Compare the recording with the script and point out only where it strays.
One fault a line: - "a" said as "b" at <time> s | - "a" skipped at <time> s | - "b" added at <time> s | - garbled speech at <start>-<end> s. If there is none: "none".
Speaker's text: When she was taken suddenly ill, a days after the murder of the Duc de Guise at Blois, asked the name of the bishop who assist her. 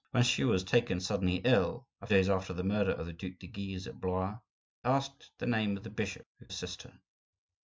none